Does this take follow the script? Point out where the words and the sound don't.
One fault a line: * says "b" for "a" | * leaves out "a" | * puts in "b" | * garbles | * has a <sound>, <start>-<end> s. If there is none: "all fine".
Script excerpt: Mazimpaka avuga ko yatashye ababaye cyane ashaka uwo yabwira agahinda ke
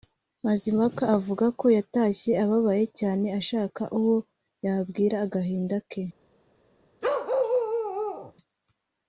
* has a bark, 7.0-8.3 s